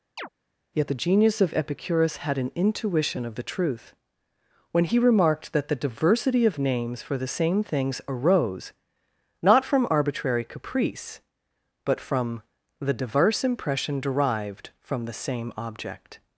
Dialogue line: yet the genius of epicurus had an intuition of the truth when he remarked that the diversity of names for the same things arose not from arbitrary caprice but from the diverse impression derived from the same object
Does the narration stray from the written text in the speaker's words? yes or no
no